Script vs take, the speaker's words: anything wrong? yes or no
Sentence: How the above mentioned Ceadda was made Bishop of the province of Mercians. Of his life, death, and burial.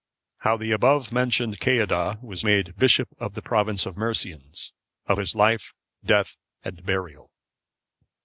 no